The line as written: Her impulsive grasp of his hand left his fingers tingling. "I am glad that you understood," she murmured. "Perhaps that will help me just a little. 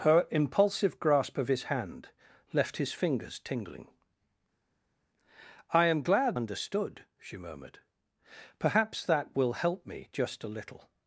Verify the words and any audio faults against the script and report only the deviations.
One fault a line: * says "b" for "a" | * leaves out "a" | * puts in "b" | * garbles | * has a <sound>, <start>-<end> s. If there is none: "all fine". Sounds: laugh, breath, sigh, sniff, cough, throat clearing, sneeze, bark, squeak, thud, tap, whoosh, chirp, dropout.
* leaves out "that you"